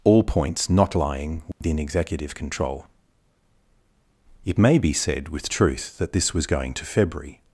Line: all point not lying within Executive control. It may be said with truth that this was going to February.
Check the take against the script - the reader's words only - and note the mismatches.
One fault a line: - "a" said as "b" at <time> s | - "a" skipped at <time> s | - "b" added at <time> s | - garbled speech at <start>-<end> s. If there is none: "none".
- "point" said as "points" at 0.2 s